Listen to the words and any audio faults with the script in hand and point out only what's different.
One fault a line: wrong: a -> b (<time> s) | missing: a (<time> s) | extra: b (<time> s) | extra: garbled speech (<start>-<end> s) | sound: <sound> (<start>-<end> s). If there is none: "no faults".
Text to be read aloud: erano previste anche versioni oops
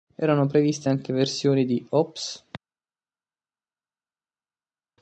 extra: di (1.6 s)